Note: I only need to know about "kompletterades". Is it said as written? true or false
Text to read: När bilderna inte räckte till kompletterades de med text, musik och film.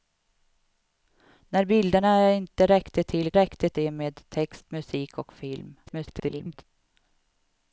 false